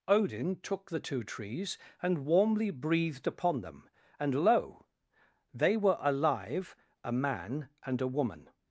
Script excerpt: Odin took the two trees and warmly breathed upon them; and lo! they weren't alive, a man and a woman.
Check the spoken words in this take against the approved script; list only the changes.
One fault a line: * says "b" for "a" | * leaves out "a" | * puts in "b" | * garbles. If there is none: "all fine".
* says "were" for "weren't"